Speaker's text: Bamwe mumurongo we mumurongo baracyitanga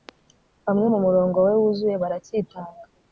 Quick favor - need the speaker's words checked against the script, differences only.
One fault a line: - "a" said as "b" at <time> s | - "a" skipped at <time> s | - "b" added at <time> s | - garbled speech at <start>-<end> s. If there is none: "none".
- "mumurongo" said as "wuzuye" at 1.6 s